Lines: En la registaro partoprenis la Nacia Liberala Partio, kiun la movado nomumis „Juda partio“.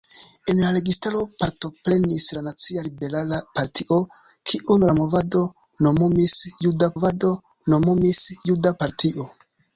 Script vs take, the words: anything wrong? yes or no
yes